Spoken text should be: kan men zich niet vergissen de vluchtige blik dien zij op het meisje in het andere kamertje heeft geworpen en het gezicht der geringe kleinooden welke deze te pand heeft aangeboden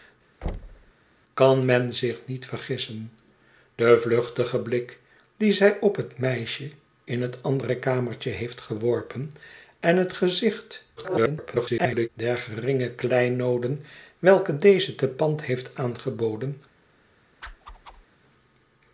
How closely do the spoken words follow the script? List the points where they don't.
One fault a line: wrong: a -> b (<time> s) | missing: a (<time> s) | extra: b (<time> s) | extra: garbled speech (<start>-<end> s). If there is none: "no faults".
extra: garbled speech (11.0-12.1 s)